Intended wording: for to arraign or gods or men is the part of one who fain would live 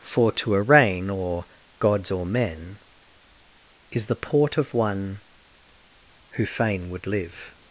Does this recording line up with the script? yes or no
no